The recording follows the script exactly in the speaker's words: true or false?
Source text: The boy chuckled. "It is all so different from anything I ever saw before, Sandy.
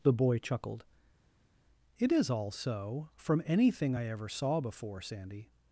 false